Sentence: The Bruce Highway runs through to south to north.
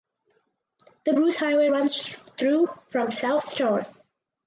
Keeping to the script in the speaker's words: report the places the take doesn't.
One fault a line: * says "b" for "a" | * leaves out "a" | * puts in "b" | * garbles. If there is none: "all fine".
* says "from" for "to"